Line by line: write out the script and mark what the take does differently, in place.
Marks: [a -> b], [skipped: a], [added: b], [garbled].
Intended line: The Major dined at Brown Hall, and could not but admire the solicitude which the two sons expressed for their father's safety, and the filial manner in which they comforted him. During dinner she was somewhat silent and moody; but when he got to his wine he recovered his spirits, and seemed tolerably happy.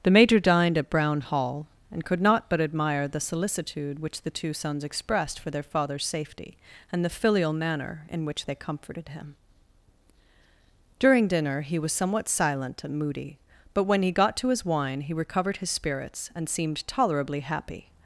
The Major dined at Brown Hall, and could not but admire the solicitude which the two sons expressed for their father's safety, and the filial manner in which they comforted him. During dinner [she -> he] was somewhat silent and moody; but when he got to his wine he recovered his spirits, and seemed tolerably happy.